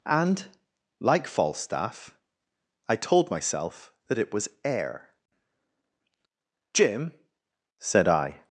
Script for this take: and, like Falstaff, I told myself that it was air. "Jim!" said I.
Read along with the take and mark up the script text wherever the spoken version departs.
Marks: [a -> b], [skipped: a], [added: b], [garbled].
and, like Falstaff, I told myself that it was air. "Jim!" said I.